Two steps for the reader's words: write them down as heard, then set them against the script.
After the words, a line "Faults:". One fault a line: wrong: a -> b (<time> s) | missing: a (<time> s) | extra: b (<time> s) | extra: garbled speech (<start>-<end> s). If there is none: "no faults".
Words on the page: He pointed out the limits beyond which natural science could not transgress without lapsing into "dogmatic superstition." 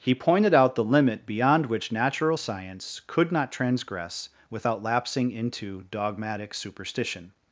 He pointed out the limit beyond which natural science could not transgress without lapsing into "dogmatic superstition."
Faults:
wrong: limits -> limit (0.8 s)